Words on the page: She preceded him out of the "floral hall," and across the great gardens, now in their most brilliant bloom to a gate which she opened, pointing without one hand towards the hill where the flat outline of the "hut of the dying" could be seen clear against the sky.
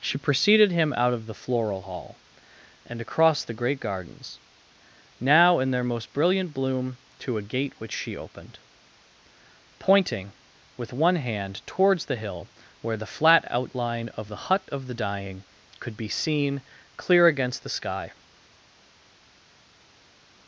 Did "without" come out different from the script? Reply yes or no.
yes